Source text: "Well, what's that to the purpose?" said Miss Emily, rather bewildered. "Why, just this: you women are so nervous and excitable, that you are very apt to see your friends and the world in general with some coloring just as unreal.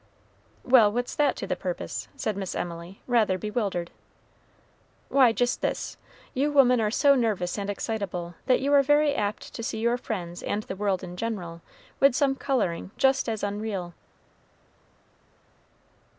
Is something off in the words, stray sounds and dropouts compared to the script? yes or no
no